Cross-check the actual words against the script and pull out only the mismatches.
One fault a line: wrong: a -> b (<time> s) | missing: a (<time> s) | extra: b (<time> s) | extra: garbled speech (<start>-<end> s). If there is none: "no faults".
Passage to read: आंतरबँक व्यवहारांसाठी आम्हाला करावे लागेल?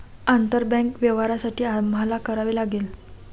no faults